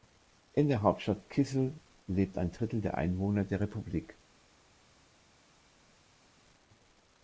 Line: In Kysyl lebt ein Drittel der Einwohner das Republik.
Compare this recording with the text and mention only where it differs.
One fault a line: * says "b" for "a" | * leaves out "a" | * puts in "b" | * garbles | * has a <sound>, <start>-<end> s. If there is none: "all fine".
* puts in "der Hauptstadt"
* says "der" for "das"